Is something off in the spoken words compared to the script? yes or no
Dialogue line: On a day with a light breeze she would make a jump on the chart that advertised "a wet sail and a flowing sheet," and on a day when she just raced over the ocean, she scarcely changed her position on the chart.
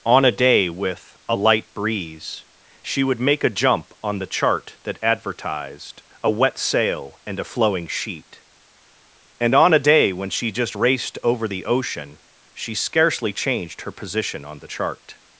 no